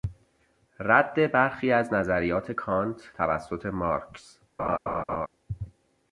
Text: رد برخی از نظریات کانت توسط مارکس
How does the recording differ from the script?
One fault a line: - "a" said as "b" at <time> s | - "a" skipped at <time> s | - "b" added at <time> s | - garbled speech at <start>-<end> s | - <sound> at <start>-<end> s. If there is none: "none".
- laugh at 4.6-5.3 s